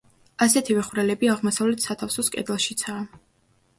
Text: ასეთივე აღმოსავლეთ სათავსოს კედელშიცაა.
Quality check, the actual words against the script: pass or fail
fail